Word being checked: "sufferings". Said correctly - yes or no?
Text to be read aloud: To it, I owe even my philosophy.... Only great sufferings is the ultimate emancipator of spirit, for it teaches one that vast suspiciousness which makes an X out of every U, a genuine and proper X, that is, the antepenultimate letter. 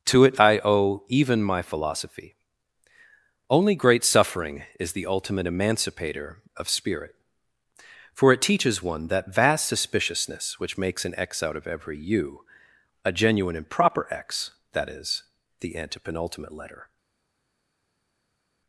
no